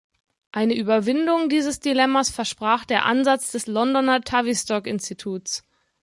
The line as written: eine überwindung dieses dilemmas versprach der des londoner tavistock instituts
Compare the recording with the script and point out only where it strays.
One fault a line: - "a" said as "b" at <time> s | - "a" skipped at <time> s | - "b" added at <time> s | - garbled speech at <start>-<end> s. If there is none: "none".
- "ansatz" added at 3.0 s